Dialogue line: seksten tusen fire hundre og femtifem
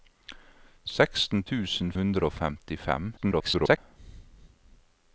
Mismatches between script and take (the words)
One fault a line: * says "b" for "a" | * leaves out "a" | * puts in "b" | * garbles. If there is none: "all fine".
* leaves out "fire"
* garbles